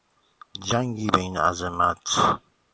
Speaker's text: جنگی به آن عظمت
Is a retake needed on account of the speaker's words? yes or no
yes